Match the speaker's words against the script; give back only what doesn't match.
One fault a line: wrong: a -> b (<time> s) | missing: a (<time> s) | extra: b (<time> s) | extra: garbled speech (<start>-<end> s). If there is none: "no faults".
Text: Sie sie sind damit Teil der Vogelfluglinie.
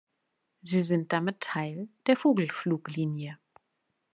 missing: sie (0.8 s)